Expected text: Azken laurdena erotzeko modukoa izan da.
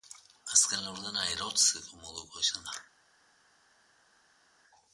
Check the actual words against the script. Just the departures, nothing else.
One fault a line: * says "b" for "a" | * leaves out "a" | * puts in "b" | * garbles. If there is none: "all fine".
all fine